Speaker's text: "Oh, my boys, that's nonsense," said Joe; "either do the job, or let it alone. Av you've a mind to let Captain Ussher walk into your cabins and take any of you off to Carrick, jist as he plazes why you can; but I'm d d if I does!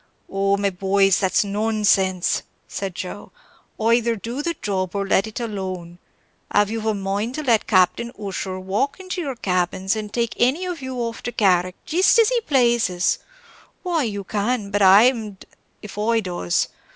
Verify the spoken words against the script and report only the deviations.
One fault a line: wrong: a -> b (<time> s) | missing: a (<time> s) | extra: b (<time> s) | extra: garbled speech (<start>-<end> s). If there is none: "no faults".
no faults